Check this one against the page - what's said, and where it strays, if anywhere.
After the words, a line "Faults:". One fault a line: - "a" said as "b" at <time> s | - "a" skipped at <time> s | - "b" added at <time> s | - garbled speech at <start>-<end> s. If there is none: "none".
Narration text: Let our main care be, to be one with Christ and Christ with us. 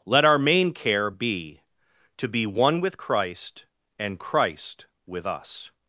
Let our main care be, to be one with Christ and Christ with us.
Faults:
none